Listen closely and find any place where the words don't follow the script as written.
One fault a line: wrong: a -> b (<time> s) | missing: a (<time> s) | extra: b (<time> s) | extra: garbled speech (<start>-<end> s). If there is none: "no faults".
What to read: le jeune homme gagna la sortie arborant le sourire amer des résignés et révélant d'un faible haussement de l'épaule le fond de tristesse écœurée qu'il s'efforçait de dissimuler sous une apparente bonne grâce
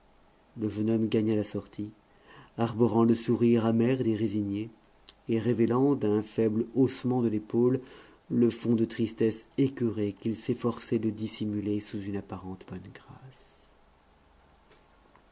no faults